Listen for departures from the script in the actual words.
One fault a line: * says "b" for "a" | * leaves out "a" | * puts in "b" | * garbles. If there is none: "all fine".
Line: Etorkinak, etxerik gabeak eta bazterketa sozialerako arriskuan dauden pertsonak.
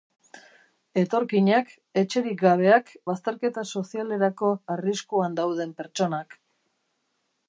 * leaves out "eta"